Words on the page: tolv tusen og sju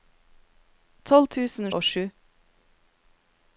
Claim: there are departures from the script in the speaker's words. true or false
false